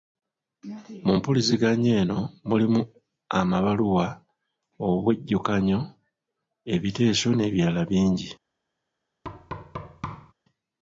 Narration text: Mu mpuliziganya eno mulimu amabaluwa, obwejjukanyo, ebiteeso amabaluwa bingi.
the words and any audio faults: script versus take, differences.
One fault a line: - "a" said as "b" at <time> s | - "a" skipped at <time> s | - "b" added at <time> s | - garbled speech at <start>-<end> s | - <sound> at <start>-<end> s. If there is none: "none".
- "amabaluwa" said as "n'ebirala" at 7.3 s
- thud at 9.2-10.3 s